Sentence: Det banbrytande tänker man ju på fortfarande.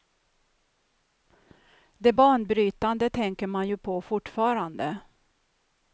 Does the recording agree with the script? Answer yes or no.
yes